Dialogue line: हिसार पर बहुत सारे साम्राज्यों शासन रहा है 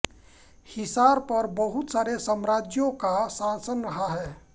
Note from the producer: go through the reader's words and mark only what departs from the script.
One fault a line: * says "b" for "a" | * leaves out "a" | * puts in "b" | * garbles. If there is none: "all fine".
* puts in "का"